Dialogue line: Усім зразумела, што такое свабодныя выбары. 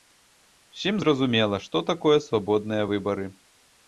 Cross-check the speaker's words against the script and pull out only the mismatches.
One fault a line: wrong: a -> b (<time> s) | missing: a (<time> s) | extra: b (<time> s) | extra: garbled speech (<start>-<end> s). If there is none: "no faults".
no faults